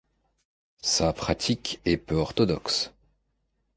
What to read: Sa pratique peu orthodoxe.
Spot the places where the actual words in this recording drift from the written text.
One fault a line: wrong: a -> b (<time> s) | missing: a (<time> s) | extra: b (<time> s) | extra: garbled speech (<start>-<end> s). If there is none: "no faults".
extra: est (1.8 s)